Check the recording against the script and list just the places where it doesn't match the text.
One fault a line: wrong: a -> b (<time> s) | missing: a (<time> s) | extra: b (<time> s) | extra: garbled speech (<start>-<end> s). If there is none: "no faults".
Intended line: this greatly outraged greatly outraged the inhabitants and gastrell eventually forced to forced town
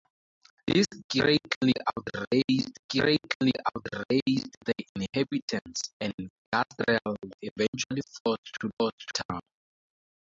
no faults